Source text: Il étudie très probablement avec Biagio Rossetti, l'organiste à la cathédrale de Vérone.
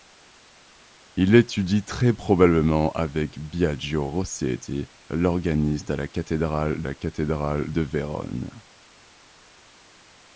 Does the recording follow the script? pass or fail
fail